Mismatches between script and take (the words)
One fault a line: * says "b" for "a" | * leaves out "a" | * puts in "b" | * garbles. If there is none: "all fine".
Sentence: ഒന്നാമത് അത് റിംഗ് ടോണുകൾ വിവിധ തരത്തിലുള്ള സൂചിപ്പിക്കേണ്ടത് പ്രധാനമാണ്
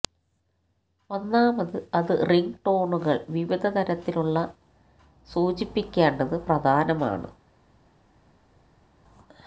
all fine